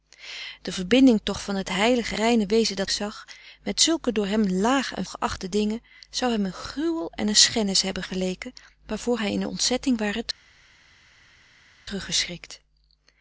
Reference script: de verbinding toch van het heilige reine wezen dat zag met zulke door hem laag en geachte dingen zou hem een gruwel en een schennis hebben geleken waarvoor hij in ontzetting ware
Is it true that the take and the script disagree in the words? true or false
false